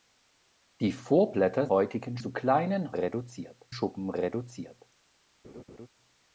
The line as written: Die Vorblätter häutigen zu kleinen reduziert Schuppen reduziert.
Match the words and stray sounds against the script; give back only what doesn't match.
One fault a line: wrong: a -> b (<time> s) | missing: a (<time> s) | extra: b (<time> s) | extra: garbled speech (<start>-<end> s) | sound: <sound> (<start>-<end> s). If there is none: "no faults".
sound: laugh (5.4-5.9 s)